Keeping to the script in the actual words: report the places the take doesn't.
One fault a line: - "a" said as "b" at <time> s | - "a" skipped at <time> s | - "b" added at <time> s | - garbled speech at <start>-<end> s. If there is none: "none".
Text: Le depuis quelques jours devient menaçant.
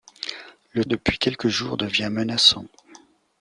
none